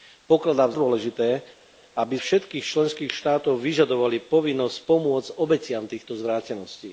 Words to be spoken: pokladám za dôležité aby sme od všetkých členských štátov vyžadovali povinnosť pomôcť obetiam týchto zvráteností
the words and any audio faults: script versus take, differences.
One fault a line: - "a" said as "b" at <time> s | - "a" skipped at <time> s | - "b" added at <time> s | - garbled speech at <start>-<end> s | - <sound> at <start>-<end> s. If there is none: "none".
- "za" skipped at 0.7 s
- "sme od" skipped at 2.2 s